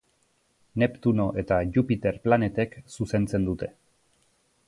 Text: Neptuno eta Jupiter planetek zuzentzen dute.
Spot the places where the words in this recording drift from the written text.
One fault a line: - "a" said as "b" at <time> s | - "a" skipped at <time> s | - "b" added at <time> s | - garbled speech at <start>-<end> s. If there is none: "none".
none